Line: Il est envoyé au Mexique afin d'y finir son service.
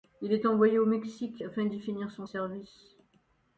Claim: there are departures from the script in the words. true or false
false